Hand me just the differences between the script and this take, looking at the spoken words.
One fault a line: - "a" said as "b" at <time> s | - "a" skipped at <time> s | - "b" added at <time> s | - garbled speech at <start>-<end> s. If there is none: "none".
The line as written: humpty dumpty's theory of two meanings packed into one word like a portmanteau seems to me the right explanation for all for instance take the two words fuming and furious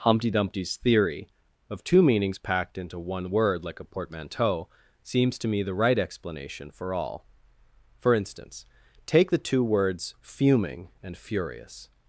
none